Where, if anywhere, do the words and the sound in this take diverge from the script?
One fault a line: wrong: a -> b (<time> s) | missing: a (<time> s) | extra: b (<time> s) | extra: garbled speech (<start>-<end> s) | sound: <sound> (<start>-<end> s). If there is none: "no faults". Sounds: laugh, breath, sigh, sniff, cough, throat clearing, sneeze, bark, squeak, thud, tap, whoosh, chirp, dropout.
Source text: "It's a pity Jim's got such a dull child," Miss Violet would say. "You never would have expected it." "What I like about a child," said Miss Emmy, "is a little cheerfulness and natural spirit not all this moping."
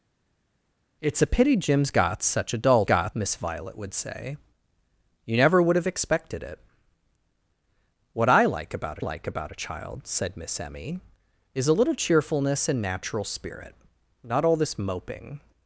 wrong: child -> got (2.8 s)
extra: like about (9.0 s)